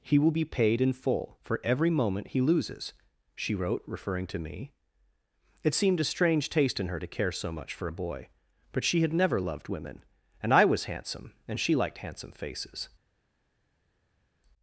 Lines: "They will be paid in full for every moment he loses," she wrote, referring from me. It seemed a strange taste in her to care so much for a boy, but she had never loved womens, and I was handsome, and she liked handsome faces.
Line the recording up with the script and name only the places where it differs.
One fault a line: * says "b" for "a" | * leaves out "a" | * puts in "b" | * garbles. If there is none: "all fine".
* says "He" for "They"
* says "to" for "from"
* says "women" for "womens"